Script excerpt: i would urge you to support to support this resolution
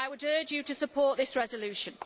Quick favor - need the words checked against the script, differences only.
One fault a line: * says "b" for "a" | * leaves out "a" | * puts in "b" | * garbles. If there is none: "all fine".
* leaves out "to support"